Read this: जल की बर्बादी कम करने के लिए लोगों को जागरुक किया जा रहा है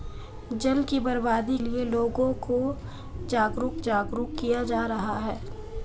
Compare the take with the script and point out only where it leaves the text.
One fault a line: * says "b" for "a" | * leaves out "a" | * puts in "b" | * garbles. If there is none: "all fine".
* leaves out "कम करने के"
* puts in "जागरुक"